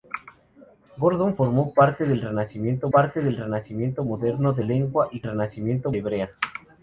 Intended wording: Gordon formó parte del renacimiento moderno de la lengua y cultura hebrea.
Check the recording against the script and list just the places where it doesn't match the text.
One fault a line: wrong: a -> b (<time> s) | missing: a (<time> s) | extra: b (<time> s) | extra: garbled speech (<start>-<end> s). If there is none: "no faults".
extra: parte del renacimiento (2.9 s)
missing: la (4.6 s)
wrong: cultura -> renacimiento (5.2 s)